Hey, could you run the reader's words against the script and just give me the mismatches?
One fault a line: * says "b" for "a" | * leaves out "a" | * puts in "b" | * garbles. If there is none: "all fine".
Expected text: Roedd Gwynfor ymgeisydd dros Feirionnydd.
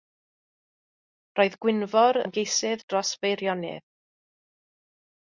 all fine